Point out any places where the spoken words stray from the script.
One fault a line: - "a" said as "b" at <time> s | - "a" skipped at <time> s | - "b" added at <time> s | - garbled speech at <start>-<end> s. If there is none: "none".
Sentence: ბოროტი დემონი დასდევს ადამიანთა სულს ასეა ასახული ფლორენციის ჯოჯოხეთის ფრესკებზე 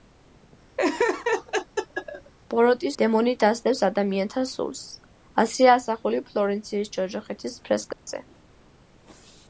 none